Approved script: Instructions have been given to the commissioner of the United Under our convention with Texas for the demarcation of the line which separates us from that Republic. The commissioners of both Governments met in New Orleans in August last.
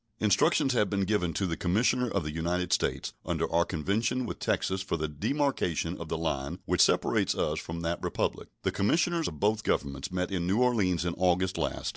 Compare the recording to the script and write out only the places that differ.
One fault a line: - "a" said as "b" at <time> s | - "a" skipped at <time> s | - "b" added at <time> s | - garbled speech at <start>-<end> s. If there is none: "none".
- "States" added at 2.7 s